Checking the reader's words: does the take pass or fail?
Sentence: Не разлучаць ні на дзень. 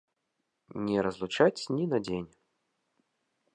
pass